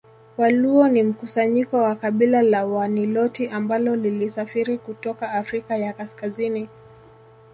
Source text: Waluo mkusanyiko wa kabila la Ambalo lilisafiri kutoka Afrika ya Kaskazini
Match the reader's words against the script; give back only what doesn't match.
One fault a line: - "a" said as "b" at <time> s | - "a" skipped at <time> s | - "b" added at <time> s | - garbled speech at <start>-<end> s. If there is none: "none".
- "ni" added at 0.9 s
- "Waniloti" added at 2.6 s